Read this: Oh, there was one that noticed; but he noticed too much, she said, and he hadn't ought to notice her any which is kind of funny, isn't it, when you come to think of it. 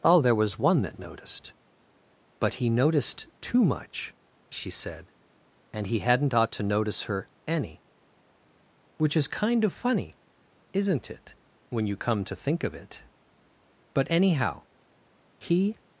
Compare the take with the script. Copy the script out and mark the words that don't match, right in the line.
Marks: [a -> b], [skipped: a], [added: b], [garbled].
Oh, there was one that noticed; but he noticed too much, she said, and he hadn't ought to notice her any which is kind of funny, isn't it, when you come to think of it. [added: But anyhow he]